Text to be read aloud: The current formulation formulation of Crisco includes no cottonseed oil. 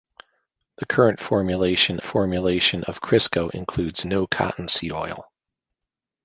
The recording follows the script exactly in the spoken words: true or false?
true